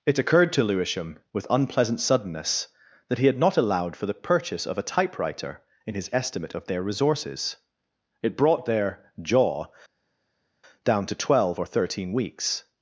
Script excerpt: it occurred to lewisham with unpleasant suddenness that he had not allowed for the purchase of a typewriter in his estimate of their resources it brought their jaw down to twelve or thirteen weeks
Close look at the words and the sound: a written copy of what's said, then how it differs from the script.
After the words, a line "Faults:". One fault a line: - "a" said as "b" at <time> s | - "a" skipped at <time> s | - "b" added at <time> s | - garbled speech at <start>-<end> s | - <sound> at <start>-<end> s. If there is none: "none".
it occurred to lewisham with unpleasant suddenness that he had not allowed for the purchase of a typewriter in his estimate of their resources it brought their jaw down to twelve or thirteen weeks
Faults:
none